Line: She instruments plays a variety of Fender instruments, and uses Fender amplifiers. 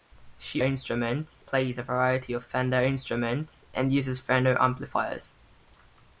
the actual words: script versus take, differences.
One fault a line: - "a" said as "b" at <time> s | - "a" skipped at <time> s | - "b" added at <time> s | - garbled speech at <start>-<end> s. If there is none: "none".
none